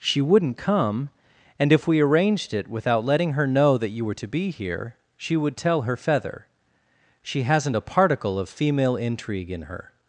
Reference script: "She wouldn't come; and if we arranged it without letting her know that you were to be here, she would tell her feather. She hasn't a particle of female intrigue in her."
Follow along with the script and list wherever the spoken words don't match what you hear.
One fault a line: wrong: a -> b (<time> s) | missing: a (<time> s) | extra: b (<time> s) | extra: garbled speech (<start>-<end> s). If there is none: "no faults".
no faults